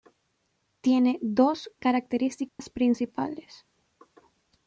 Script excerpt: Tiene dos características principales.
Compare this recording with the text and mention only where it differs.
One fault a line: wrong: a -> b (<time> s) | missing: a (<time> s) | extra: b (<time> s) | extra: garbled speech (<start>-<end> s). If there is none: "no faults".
no faults